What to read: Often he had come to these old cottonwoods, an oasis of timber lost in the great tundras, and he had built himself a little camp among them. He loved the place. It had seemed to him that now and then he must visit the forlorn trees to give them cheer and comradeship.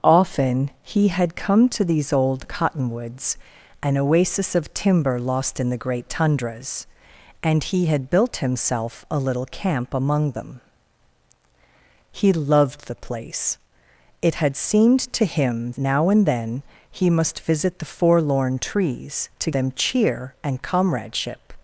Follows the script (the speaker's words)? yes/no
no